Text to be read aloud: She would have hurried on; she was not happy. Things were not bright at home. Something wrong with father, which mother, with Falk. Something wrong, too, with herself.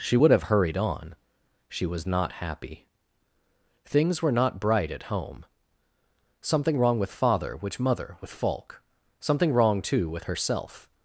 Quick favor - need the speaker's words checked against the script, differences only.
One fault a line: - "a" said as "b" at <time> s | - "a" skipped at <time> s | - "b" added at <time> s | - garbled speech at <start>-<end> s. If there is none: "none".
none